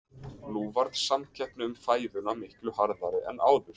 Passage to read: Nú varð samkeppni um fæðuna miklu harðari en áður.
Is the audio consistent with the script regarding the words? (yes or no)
yes